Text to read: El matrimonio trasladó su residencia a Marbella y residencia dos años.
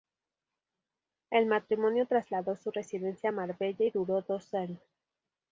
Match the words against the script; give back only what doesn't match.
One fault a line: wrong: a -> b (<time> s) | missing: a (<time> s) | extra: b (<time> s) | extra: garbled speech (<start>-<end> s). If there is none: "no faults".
wrong: residencia -> duró (3.9 s)